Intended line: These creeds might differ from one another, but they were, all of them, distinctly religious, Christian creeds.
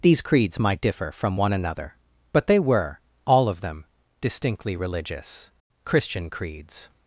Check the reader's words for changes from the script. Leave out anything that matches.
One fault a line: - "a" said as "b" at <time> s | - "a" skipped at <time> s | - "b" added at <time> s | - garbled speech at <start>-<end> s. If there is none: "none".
none